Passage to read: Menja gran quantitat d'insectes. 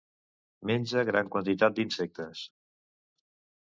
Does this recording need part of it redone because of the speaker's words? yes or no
no